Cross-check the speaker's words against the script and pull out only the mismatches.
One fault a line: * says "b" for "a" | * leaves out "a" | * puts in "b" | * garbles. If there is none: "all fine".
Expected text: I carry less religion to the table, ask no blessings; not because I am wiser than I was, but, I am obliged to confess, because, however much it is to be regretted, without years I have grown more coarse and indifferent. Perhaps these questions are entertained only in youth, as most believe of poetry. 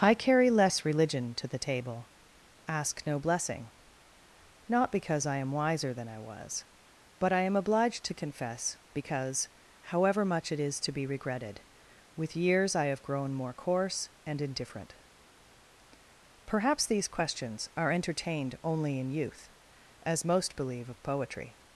* says "blessing" for "blessings"
* says "with" for "without"